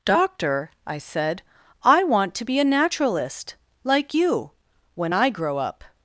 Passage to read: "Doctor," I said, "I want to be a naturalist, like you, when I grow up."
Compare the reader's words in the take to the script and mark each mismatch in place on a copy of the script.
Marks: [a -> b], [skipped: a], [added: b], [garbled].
"Doctor," I said, "I want to be a naturalist, like you, when I grow up."